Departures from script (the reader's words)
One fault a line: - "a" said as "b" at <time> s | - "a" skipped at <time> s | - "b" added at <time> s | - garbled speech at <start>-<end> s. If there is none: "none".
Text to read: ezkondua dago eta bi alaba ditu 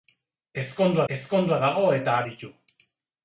- "ezkondua" added at 1.1 s
- "bi alaba" skipped at 2.2 s